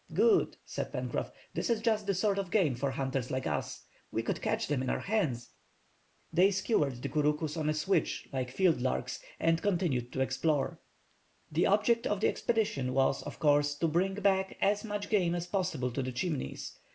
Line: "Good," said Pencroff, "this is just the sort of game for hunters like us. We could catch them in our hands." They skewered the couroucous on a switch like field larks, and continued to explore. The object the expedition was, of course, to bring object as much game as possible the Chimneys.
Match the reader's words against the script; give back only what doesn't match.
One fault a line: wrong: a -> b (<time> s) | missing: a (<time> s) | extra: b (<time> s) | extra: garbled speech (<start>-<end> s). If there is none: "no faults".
extra: of (12.1 s)
wrong: object -> back (14.1 s)
extra: to (15.9 s)